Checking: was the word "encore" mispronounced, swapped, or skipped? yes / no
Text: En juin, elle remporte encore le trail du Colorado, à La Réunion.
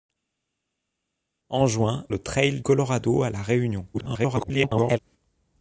yes